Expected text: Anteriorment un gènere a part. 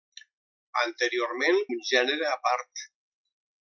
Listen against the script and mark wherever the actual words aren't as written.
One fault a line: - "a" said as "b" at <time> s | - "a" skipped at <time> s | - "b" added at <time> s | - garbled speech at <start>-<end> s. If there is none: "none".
none